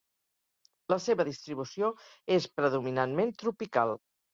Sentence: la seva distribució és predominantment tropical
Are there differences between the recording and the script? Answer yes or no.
no